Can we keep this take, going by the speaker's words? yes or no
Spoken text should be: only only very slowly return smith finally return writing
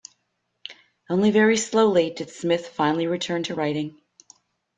no